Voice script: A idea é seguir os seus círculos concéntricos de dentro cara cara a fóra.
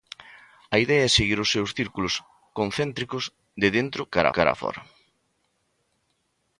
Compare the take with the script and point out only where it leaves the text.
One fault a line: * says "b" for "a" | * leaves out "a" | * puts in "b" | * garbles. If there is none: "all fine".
all fine